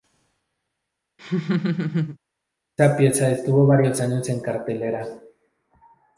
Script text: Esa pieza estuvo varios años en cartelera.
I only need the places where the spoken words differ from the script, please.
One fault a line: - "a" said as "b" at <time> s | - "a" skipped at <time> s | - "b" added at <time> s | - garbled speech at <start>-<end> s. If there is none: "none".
none